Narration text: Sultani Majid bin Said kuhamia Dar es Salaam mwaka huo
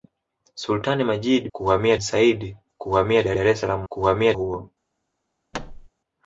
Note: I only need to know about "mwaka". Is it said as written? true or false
false